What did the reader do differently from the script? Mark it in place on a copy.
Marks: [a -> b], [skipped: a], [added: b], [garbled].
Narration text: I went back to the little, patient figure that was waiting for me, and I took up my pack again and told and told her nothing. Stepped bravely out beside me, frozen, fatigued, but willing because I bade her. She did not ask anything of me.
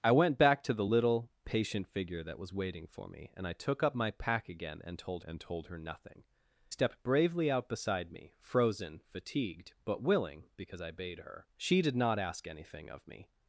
I went back to the little, patient figure that was waiting for me, and I took up my pack again and told and told her nothing. Stepped bravely out beside me, frozen, fatigued, but willing because I bade her. She did not ask anything of me.